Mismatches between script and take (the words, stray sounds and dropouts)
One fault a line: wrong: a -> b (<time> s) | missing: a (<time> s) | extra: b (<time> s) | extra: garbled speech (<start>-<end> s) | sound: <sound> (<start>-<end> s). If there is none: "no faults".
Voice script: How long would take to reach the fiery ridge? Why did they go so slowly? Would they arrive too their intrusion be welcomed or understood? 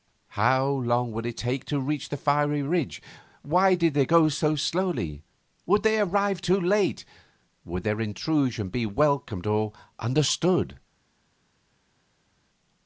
extra: it (1.3 s)
extra: late Would (6.6 s)